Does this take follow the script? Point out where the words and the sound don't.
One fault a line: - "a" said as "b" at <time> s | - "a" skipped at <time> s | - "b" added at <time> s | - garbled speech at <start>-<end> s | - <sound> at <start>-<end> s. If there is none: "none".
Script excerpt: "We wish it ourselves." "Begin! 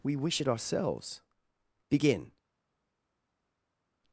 none